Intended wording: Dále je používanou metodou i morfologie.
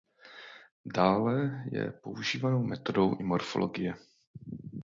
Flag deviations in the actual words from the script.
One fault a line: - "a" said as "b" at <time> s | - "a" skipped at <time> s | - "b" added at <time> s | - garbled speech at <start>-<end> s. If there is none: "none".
none